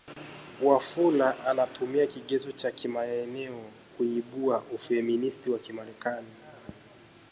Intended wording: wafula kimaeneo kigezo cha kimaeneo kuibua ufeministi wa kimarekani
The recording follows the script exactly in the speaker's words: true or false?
false